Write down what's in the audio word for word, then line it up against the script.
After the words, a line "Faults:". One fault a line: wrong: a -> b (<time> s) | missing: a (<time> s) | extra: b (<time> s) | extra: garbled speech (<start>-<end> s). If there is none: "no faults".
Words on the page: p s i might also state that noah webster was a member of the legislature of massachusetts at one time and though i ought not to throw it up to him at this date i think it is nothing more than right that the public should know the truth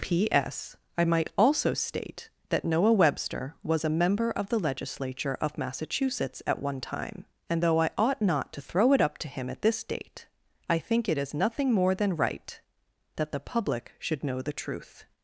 p s i might also state that noah webster was a member of the legislature of massachusetts at one time and though i ought not to throw it up to him at this date i think it is nothing more than right that the public should know the truth
Faults:
no faults